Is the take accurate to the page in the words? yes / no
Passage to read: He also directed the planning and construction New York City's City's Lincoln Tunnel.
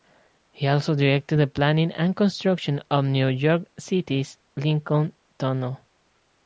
no